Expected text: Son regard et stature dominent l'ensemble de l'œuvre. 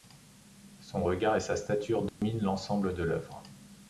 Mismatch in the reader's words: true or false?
true